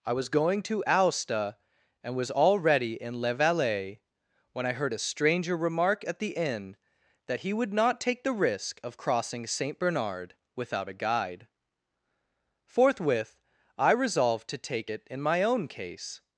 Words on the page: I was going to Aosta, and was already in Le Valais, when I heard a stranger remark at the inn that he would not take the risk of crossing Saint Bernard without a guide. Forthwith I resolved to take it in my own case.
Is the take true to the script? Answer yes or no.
yes